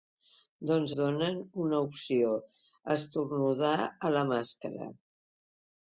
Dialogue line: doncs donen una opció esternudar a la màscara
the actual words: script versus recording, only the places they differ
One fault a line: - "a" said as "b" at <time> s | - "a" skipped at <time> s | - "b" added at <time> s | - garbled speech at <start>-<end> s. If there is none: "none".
none